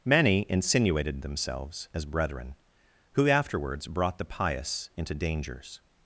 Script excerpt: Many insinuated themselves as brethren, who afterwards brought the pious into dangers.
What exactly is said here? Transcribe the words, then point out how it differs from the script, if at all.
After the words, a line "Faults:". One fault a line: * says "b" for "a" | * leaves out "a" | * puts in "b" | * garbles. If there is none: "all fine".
Many insinuated themselves as brethren, who afterwards brought the pious into dangers.
Faults:
all fine